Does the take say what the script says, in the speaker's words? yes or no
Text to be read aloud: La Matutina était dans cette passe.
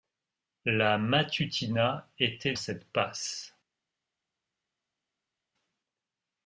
no